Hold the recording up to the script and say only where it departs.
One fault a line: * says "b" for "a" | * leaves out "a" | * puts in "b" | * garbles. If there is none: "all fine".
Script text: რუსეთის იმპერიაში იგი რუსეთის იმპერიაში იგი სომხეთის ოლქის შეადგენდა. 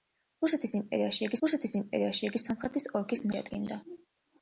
all fine